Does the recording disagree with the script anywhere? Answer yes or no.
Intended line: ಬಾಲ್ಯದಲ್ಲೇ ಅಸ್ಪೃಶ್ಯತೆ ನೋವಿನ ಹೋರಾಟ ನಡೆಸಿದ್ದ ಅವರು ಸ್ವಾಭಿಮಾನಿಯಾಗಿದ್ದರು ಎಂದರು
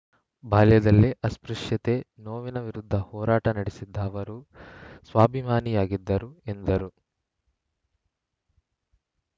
yes